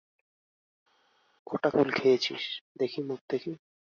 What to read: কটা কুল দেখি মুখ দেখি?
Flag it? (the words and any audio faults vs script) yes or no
yes